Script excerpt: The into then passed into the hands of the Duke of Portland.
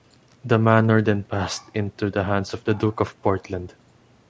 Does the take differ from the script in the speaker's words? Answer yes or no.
yes